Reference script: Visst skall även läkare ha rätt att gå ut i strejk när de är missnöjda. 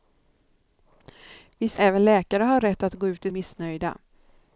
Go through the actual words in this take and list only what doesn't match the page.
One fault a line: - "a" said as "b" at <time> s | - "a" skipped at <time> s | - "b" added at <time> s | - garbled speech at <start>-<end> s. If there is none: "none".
- "skall" skipped at 1.8 s
- "strejk när de" skipped at 3.3 s